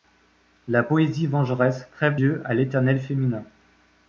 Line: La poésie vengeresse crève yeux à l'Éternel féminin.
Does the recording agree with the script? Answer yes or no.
yes